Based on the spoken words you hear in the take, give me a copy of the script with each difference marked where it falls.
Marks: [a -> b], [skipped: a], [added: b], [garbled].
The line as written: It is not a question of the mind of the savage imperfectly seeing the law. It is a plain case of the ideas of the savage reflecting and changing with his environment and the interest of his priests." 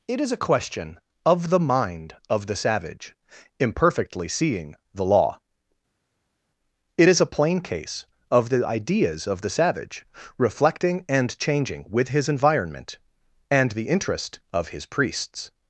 It is [skipped: not] a question of the mind of the savage imperfectly seeing the law. It is a plain case of the ideas of the savage reflecting and changing with his environment and the interest of his priests."